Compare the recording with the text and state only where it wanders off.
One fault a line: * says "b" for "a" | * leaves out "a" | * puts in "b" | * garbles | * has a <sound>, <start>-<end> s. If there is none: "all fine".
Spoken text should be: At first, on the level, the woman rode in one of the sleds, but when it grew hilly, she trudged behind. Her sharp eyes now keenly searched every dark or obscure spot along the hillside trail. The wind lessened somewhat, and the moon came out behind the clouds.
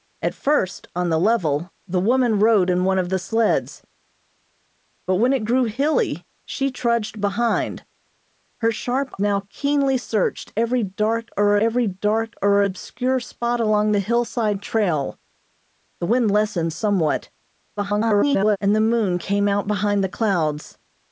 * leaves out "eyes"
* puts in "every dark or"
* garbles